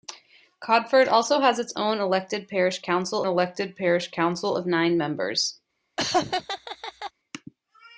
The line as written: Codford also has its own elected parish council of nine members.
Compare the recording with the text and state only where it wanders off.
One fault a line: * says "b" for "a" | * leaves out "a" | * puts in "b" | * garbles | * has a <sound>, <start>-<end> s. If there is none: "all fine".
* puts in "elected parish council"
* has a laugh, 6.0-7.1 s